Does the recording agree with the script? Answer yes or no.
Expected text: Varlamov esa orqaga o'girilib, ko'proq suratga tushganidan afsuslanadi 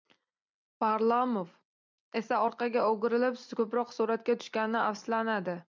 yes